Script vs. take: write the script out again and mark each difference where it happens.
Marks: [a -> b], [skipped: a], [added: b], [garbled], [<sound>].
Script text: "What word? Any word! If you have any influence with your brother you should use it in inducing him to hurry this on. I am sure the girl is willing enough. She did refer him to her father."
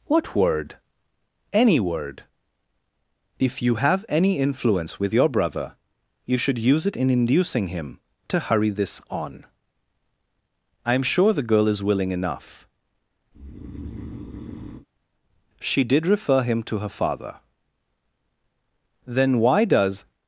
"What word? Any word! If you have any influence with your brother you should use it in inducing him to hurry this on. I am sure the girl is willing enough. [breath] She did refer him to her father." [added: Then why does]